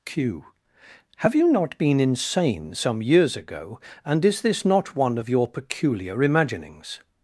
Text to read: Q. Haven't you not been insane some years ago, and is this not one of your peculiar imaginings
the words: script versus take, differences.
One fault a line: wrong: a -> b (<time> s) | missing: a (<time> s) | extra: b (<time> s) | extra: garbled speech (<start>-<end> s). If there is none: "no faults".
wrong: Haven't -> Have (1.2 s)